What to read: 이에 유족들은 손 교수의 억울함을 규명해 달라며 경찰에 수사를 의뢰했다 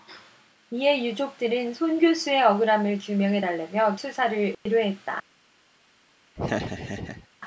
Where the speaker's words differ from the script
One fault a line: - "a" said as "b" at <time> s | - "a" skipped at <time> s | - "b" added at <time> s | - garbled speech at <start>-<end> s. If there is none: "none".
- "경찰에" skipped at 4.0 s